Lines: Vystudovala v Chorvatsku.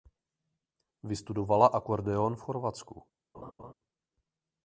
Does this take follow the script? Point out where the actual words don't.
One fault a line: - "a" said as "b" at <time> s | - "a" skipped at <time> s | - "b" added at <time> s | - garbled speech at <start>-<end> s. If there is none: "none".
- "akordeon" added at 1.7 s